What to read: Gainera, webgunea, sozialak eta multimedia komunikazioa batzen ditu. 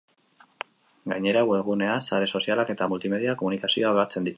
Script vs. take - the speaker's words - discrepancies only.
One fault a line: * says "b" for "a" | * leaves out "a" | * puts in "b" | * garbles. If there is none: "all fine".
* puts in "sare"